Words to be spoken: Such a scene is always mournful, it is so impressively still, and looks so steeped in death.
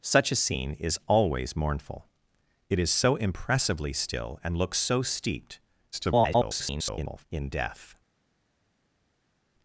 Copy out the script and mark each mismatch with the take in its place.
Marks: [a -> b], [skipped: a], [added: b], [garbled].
Such a scene is always mournful, it is so impressively still, and looks so steeped [garbled] in death.